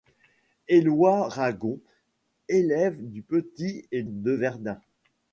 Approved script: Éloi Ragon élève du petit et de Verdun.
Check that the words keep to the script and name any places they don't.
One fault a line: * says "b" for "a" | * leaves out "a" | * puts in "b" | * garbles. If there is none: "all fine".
all fine